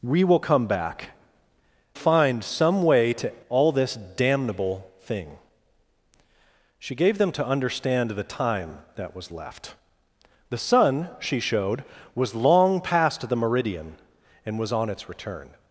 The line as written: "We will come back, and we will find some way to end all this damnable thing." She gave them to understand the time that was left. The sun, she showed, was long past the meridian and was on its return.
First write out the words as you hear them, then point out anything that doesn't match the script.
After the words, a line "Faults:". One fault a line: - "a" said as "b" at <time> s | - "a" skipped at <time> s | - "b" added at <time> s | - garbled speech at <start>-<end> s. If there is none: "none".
"We will come back, find some way to all this damnable thing." She gave them to understand the time that was left. The sun, she showed, was long past the meridian and was on its return.
Faults:
- "and we will" skipped at 1.1 s
- "end" skipped at 3.4 s